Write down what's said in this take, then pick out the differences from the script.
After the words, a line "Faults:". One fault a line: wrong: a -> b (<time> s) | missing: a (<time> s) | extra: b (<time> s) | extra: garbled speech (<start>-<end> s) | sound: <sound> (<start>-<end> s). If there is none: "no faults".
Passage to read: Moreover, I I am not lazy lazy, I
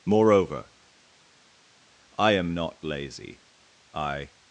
Moreover, I am not lazy, I
Faults:
missing: I (2.3 s)
missing: lazy (3.4 s)